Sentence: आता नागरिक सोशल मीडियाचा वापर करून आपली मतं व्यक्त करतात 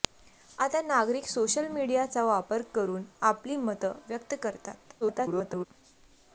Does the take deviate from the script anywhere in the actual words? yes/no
yes